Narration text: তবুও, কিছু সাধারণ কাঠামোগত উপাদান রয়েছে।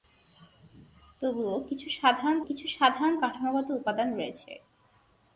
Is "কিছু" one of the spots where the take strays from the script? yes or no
no